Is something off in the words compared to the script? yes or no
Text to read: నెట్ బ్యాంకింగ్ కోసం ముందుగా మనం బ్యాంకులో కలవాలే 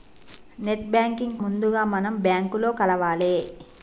yes